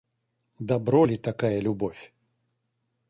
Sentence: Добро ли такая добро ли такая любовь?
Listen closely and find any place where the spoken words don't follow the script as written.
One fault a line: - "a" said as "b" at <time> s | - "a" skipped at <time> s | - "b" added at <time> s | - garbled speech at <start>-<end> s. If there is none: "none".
- "добро ли такая" skipped at 1.6 s